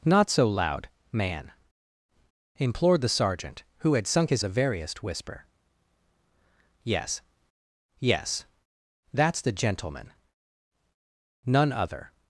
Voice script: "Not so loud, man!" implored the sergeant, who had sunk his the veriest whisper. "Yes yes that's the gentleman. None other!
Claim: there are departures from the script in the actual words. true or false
false